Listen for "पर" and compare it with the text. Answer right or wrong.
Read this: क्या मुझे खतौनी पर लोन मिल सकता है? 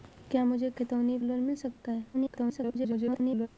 wrong